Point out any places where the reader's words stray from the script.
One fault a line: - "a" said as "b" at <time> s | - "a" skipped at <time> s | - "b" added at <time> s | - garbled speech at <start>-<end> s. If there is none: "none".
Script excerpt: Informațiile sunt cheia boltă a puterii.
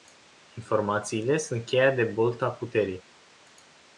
- "de" added at 1.9 s